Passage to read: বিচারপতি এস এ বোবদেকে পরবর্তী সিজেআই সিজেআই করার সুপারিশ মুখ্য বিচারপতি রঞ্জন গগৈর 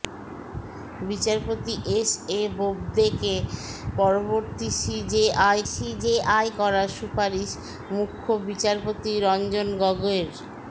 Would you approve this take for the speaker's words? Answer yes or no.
yes